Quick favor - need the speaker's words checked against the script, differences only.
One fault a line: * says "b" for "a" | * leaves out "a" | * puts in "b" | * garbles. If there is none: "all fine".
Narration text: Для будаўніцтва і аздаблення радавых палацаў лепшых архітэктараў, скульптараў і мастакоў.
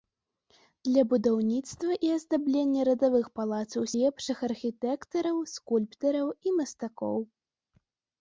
all fine